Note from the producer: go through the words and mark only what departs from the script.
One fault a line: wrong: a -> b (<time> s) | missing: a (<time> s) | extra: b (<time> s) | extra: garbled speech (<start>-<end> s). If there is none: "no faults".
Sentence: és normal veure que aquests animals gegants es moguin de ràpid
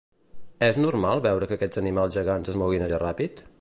no faults